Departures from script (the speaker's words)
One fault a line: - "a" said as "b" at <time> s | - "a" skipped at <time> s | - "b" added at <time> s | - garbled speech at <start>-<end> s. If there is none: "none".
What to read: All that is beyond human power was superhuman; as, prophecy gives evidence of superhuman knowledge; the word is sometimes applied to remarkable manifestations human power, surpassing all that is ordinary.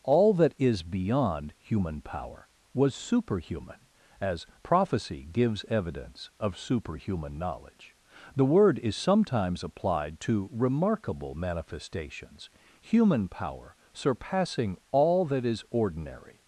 none